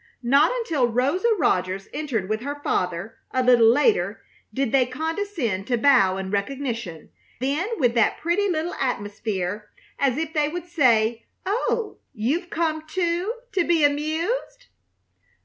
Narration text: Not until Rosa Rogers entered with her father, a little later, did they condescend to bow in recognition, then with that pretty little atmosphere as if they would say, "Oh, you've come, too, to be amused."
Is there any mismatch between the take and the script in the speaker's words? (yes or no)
no